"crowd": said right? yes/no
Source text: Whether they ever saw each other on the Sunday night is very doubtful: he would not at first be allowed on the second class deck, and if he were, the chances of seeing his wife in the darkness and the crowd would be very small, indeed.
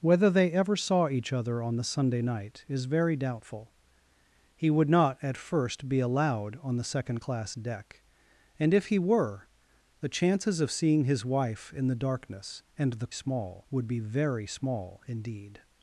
no